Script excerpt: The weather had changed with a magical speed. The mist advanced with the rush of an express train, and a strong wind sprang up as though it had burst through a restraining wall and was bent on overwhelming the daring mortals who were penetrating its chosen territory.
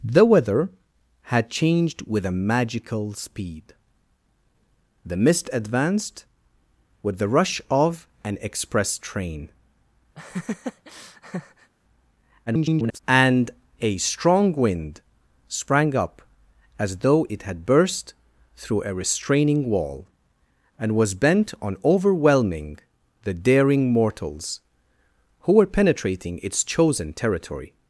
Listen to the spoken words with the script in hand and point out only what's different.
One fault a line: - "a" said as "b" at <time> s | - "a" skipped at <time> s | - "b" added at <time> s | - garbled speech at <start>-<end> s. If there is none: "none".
- garbled speech at 12.5-13.0 s